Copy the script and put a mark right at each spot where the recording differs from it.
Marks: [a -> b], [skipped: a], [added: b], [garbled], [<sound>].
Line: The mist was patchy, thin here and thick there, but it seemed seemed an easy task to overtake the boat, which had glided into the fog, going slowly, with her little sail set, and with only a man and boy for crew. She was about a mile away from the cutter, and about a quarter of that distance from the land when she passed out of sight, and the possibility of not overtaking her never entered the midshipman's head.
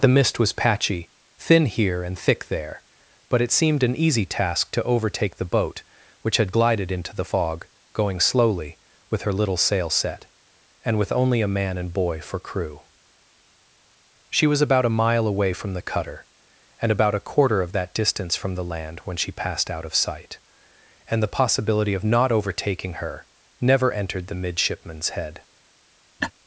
The mist was patchy, thin here and thick there, but it seemed [skipped: seemed] an easy task to overtake the boat, which had glided into the fog, going slowly, with her little sail set, and with only a man and boy for crew. She was about a mile away from the cutter, and about a quarter of that distance from the land when she passed out of sight, and the possibility of not overtaking her never entered the midshipman's head. [laugh]